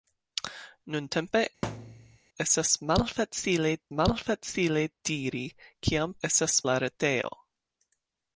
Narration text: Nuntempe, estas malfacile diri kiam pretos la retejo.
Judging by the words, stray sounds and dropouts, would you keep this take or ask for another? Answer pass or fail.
fail